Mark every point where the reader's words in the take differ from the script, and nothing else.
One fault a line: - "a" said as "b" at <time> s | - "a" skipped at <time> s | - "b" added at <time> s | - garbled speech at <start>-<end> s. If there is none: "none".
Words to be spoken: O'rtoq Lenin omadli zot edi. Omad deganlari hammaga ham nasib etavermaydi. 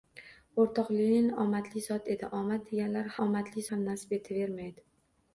- "hammaga" said as "omadli" at 3.2 s